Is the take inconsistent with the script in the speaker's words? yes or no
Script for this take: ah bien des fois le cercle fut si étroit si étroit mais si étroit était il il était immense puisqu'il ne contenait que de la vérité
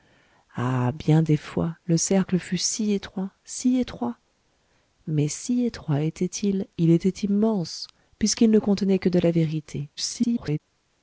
yes